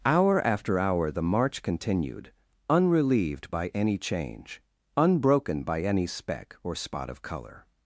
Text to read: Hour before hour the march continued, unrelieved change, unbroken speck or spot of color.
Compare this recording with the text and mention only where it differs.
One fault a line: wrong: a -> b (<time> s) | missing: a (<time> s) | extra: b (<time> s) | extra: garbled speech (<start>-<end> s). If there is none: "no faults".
wrong: before -> after (0.4 s)
extra: by any (3.5 s)
extra: by any (5.6 s)